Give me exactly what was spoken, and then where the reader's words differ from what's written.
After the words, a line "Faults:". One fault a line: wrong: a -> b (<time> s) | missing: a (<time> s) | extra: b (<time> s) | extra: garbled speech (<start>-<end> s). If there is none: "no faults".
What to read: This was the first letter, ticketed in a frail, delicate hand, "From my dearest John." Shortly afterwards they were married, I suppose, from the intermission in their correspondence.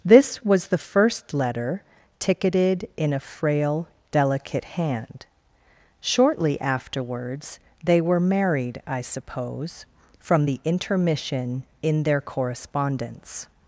This was the first letter, ticketed in a frail, delicate hand, "Shortly afterwards they were married, I suppose, from the intermission in their correspondence.
Faults:
missing: From my dearest John (5.3 s)